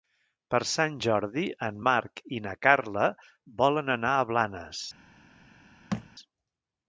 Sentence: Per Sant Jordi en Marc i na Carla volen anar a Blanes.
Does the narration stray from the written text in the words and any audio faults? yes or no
yes